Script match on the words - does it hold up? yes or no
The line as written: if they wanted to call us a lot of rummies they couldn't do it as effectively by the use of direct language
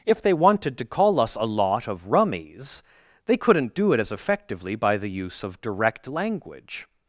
yes